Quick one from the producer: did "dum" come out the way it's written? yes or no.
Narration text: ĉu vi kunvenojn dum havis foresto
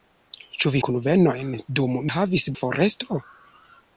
yes